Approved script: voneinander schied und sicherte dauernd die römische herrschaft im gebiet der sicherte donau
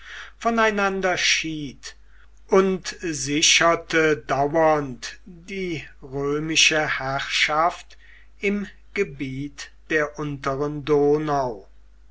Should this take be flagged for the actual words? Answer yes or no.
yes